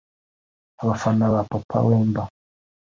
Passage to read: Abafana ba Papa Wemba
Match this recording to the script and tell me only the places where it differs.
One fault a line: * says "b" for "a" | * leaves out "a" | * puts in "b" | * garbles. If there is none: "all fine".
all fine